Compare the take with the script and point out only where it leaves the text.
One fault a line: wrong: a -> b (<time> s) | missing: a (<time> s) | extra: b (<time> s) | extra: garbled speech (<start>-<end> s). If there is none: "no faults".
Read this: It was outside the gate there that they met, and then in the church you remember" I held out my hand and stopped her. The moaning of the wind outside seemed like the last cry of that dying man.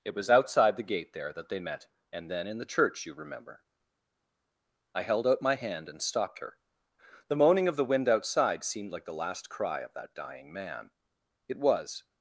extra: It was (11.5 s)